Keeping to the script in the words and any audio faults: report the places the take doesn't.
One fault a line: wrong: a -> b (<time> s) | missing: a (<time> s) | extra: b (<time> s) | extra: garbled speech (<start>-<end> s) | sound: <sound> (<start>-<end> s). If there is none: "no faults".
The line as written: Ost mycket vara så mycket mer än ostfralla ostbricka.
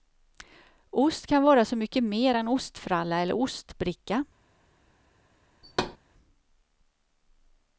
wrong: mycket -> kan (1.3 s)
extra: eller (3.2 s)
sound: thud (5.6-6.0 s)